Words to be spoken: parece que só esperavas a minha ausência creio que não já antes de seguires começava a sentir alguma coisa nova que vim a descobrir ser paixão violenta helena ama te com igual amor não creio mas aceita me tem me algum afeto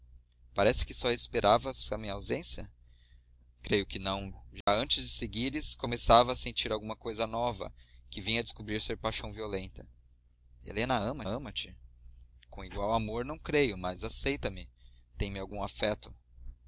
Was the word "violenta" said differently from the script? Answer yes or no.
no